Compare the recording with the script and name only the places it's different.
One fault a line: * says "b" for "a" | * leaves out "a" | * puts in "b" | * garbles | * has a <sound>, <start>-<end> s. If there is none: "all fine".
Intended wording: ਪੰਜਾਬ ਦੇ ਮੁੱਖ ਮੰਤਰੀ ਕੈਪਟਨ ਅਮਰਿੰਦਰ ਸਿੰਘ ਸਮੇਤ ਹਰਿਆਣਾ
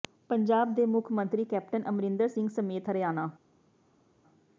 all fine